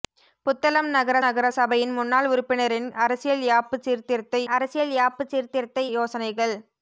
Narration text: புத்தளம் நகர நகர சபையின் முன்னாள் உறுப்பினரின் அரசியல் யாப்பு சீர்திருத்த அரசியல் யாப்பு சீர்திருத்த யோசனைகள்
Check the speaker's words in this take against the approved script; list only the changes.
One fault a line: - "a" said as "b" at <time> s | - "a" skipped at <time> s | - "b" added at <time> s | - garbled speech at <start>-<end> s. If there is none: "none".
none